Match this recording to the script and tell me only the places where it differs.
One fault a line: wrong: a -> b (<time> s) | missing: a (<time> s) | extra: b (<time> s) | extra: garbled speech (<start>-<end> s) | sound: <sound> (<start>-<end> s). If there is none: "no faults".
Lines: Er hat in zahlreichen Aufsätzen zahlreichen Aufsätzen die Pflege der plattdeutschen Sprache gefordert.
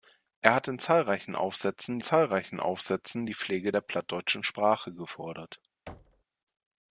sound: thud (5.9-6.2 s)